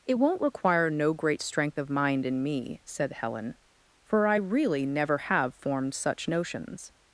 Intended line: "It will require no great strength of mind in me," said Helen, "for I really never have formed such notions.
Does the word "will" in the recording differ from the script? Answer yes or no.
yes